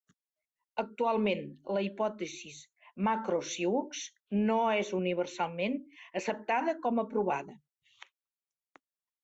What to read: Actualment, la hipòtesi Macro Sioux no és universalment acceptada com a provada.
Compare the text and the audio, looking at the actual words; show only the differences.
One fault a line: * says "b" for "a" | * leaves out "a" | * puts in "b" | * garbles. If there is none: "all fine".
all fine